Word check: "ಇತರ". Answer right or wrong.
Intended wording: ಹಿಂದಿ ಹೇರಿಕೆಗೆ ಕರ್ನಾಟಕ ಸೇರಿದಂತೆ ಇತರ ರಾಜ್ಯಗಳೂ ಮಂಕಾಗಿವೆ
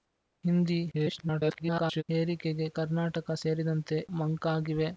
wrong